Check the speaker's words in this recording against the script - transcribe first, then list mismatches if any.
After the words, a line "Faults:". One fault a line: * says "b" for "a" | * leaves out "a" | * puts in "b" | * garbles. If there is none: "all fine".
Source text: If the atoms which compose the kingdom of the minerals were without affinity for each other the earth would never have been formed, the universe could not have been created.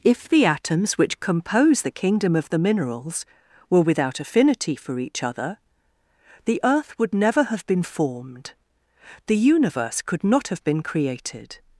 If the atoms which compose the kingdom of the minerals were without affinity for each other the earth would never have been formed, the universe could not have been created.
Faults:
all fine